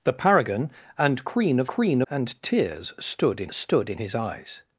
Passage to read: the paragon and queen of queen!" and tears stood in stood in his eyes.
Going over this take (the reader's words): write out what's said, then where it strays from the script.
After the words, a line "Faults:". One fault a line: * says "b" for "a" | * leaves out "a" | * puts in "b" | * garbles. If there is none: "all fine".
the paragon and queen of queen!" and tears stood in stood in his eyes.
Faults:
all fine